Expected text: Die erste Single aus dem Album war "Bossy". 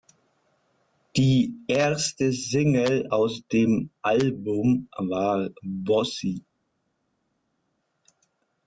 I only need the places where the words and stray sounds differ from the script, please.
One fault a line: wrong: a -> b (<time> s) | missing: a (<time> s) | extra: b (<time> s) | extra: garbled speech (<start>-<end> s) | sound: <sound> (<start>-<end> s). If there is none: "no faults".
no faults